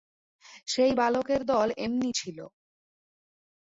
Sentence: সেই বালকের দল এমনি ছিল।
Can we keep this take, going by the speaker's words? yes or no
yes